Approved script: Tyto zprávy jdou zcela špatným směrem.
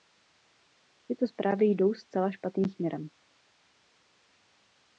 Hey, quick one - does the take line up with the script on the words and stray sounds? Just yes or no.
yes